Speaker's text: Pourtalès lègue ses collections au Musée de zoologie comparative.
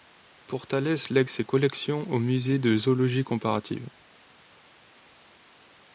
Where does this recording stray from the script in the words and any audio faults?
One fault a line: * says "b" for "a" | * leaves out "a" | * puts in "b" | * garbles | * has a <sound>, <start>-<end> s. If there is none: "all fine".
all fine